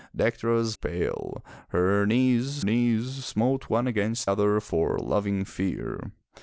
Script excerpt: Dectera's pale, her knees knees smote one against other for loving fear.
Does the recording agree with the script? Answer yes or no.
yes